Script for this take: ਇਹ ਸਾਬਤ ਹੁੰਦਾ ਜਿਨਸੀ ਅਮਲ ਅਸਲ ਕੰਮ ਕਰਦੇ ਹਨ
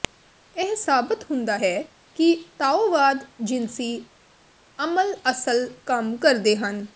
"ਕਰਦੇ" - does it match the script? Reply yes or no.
yes